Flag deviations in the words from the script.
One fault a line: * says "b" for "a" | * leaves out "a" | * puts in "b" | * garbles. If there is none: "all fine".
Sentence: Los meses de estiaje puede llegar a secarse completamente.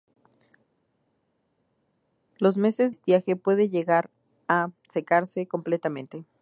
* leaves out "de"